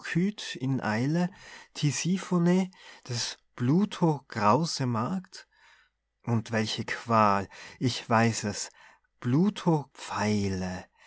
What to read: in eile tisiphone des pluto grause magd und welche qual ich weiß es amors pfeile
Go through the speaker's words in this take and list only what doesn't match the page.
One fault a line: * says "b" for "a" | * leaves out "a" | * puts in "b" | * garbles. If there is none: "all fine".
* says "pluto" for "amors"